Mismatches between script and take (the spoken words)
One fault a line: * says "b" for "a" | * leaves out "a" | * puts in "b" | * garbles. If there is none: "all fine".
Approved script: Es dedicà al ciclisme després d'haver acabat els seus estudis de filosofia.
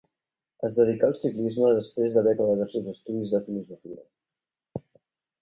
all fine